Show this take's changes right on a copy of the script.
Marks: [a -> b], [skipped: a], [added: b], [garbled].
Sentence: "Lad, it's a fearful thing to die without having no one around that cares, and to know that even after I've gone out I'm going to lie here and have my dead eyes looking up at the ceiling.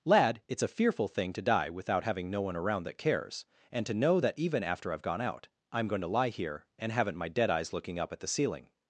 "Lad, it's a fearful thing to die without having no one around that cares, and to know that even after I've gone out I'm going to lie here and [have -> haven't] my dead eyes looking up at the ceiling.